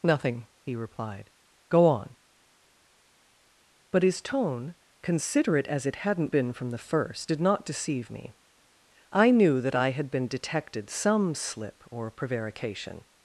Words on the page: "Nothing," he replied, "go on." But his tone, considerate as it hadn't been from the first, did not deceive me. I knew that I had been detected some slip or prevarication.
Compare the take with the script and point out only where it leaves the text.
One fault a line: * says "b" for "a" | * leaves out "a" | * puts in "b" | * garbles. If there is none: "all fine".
all fine